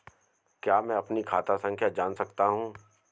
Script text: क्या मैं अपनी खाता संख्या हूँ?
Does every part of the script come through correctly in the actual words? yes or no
no